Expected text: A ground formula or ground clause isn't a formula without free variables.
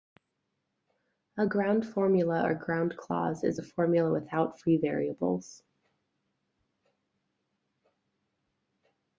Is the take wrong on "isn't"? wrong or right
wrong